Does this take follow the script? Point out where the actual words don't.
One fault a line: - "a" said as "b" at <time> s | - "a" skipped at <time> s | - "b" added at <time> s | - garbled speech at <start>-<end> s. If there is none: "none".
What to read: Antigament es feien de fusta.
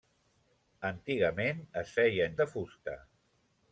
none